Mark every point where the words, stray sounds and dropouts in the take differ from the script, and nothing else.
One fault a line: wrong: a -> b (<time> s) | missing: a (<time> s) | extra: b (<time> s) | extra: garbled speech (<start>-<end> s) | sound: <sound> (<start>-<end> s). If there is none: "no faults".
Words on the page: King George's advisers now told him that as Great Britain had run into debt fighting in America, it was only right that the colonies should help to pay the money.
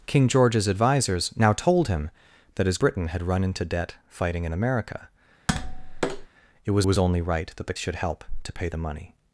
missing: Great (2.8 s)
sound: tap (5.5-6.3 s)
extra: was (6.8 s)
missing: colonies (7.7 s)